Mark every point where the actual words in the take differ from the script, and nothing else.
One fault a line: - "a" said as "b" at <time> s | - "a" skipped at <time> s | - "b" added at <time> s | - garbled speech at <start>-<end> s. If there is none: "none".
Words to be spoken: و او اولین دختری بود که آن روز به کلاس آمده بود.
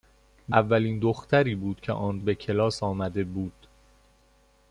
- "او" skipped at 0.6 s
- "روز" skipped at 2.2 s